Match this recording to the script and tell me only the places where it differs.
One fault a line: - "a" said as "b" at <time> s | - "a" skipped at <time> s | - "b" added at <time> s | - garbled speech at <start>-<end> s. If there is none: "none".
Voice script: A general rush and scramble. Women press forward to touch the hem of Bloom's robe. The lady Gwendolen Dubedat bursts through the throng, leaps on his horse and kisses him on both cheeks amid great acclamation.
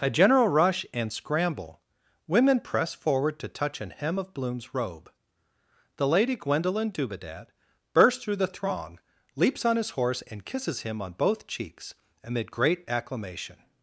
- "the" said as "an" at 3.8 s